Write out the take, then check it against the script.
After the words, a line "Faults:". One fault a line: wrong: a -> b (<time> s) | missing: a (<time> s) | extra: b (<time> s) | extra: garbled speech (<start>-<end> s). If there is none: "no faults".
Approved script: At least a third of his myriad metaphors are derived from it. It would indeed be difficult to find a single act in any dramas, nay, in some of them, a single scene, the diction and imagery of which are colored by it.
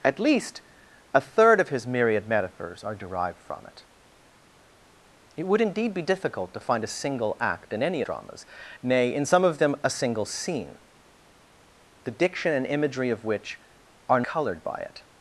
At least a third of his myriad metaphors are derived from it. It would indeed be difficult to find a single act in any dramas, nay, in some of them, a single scene, the diction and imagery of which are colored by it.
Faults:
no faults